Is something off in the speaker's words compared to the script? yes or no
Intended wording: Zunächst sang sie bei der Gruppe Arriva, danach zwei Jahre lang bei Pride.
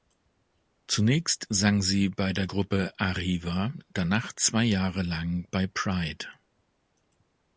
no